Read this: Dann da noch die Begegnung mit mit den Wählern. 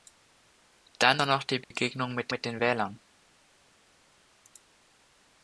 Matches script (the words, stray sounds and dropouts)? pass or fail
fail